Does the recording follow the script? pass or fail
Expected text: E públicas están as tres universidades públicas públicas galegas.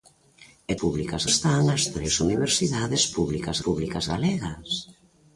pass